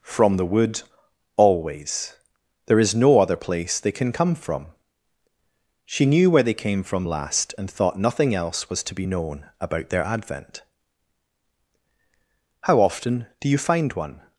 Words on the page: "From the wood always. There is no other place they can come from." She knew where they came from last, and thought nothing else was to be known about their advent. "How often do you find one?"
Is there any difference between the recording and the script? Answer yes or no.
no